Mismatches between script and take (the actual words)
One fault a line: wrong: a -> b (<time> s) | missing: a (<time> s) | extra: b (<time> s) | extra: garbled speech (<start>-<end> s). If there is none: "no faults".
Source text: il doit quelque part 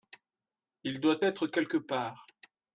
extra: être (1.2 s)